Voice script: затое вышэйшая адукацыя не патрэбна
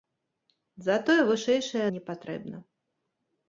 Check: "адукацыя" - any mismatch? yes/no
yes